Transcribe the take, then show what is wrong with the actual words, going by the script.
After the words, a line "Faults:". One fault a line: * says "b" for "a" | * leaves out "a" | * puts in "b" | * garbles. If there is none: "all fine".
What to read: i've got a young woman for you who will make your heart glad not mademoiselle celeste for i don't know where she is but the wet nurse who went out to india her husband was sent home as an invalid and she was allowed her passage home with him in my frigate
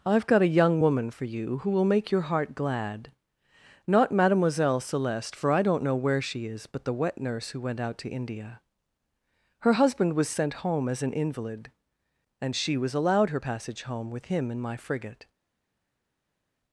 i've got a young woman for you who will make your heart glad not mademoiselle celeste for i don't know where she is but the wet nurse who went out to india her husband was sent home as an invalid and she was allowed her passage home with him in my frigate
Faults:
all fine